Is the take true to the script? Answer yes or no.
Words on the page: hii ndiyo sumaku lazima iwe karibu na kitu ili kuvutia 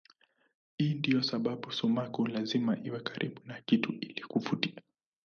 no